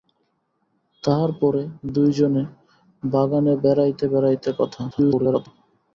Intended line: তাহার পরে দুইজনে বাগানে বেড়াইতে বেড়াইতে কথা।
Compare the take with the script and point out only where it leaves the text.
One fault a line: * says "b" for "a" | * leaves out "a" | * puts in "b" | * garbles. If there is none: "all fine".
* garbles